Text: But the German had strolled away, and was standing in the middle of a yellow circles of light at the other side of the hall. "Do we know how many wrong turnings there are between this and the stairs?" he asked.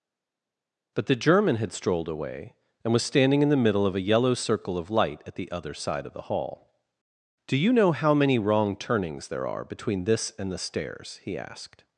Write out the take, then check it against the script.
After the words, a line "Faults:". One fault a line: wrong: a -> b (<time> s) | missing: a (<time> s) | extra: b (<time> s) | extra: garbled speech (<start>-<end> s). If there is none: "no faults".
But the German had strolled away, and was standing in the middle of a yellow circle of light at the other side of the hall. "Do you know how many wrong turnings there are between this and the stairs?" he asked.
Faults:
wrong: circles -> circle (4.3 s)
wrong: we -> you (7.6 s)